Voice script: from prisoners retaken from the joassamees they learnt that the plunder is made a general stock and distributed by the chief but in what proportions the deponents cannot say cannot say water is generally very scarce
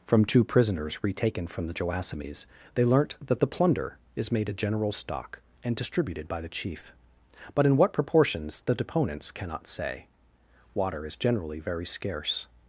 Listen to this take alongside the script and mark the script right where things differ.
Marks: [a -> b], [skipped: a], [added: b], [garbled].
from [added: two] prisoners retaken from the joassamees they learnt that the plunder is made a general stock and distributed by the chief but in what proportions the deponents cannot say [skipped: cannot say] water is generally very scarce